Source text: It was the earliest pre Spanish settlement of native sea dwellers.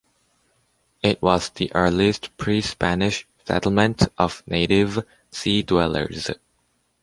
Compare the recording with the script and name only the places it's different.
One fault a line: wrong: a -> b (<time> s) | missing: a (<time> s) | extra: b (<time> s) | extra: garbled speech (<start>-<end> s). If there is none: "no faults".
no faults